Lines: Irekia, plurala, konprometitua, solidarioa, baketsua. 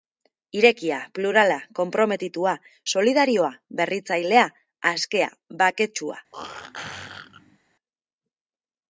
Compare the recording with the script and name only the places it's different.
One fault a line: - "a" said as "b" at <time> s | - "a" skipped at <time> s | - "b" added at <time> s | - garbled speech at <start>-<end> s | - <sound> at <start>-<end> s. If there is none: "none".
- "berritzailea askea" added at 3.8 s
- throat clearing at 6.3-7.6 s